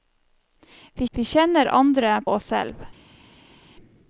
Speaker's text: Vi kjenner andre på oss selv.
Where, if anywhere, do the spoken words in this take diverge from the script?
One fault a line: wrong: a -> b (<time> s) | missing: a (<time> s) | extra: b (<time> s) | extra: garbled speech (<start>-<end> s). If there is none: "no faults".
extra: vi (1.1 s)
missing: på (2.2 s)